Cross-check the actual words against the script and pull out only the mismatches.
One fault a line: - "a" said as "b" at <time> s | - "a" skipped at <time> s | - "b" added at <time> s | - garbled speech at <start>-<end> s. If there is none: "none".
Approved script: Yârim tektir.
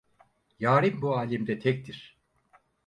- "bu âlemde" added at 1.0 s